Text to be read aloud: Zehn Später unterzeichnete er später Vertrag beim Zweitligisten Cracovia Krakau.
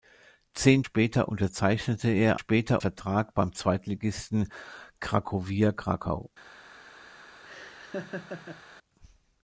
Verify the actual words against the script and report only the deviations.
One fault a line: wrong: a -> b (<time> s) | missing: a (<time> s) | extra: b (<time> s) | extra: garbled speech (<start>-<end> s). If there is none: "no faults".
no faults